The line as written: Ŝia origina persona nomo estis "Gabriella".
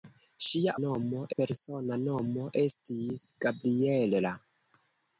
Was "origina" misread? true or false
true